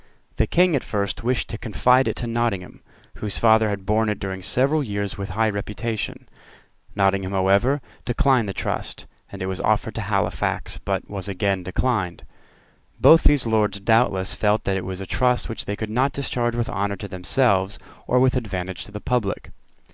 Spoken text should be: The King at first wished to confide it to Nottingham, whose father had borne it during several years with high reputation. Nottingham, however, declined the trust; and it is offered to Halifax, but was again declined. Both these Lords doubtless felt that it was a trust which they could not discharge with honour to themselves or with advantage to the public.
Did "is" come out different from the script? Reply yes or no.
yes